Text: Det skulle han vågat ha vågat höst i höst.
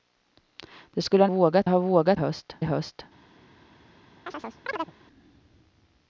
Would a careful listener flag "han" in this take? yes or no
no